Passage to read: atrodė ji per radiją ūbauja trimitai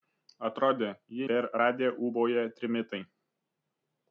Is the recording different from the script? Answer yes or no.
no